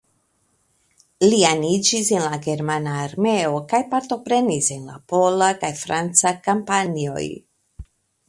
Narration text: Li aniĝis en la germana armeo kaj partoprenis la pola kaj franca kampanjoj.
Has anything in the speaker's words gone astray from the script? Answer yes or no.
yes